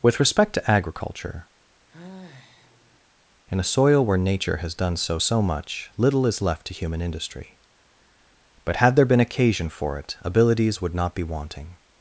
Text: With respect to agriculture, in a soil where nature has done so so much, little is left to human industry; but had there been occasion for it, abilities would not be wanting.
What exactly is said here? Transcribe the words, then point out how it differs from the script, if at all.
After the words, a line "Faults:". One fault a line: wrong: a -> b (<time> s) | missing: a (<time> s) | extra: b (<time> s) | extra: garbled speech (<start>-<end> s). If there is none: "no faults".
With respect to agriculture, in a soil where nature has done so so much, little is left to human industry; but had there been occasion for it, abilities would not be wanting.
Faults:
no faults